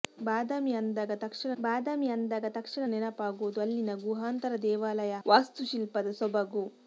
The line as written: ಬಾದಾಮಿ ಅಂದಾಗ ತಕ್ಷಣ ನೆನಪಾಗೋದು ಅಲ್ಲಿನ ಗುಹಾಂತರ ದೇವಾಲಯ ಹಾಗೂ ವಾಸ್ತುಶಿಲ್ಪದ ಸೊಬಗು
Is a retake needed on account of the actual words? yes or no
yes